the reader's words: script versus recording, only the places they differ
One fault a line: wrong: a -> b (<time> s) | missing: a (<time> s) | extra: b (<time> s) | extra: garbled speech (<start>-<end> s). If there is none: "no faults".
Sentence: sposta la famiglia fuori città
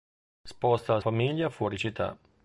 no faults